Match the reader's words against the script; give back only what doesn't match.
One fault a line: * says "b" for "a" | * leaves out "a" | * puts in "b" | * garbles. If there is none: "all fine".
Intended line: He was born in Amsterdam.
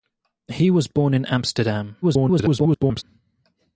* garbles